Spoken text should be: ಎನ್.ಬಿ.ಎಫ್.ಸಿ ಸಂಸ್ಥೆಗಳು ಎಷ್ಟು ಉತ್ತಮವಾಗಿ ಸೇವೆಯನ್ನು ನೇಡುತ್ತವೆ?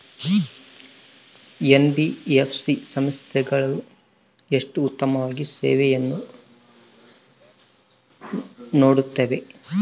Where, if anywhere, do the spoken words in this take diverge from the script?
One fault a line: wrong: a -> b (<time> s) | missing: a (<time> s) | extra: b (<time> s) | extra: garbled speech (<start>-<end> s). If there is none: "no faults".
no faults